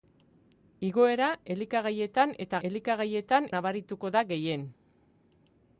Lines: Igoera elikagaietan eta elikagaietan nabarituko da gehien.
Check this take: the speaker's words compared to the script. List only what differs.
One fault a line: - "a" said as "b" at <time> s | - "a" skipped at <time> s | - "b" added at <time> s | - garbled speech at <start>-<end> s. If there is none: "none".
none